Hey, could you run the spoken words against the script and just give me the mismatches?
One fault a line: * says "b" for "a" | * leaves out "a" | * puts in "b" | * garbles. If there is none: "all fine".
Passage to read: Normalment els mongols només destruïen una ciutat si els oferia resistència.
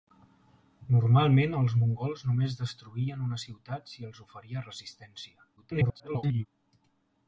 * garbles